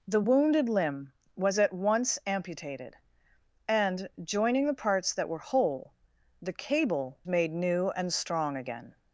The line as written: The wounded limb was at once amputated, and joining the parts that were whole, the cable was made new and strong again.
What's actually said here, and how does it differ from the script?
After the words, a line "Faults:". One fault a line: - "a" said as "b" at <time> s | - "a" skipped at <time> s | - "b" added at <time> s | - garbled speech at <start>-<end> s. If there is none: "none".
The wounded limb was at once amputated, and joining the parts that were whole, the cable made new and strong again.
Faults:
- "was" skipped at 7.2 s